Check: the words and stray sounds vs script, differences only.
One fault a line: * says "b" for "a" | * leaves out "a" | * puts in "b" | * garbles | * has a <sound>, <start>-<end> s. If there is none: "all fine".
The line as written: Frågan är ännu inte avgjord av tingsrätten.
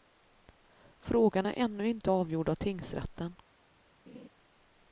* has a laugh, 4.1-4.3 s